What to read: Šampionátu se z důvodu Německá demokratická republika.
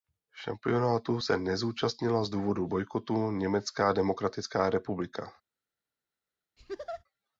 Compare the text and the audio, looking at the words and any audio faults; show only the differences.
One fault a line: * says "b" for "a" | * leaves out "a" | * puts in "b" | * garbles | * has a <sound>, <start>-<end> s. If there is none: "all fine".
* puts in "nezúčastnila"
* puts in "bojkotu"
* has a laugh, 6.6-7.0 s